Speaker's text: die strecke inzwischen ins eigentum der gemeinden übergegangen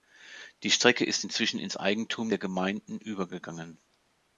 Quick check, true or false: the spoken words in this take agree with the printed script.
false